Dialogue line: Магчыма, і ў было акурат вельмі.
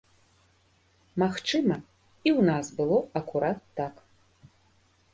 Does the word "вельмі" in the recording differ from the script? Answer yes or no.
yes